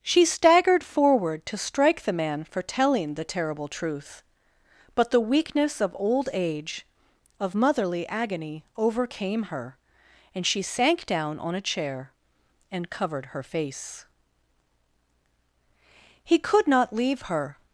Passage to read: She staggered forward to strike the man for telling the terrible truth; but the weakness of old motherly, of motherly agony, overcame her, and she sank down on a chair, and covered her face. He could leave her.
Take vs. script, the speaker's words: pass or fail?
fail